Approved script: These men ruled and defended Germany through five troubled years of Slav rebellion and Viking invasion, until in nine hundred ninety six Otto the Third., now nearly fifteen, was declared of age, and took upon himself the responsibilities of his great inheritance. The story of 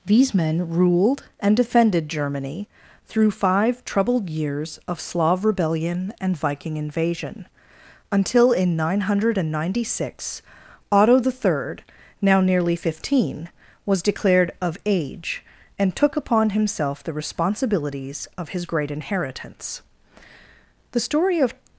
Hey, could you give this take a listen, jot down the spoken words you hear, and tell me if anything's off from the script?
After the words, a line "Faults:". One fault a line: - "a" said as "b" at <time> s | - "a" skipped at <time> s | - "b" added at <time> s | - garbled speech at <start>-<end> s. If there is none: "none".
These men ruled and defended Germany through five troubled years of Slav rebellion and Viking invasion, until in nine hundred ninety six Otto the Third., now nearly fifteen, was declared of age, and took upon himself the responsibilities of his great inheritance. The story of
Faults:
none